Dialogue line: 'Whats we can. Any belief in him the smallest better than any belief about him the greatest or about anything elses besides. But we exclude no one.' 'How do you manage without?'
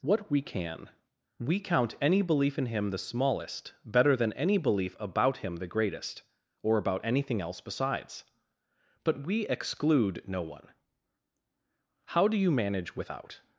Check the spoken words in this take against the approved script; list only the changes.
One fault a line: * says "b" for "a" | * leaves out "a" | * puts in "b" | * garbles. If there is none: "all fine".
* says "What" for "Whats"
* puts in "We count"
* says "else" for "elses"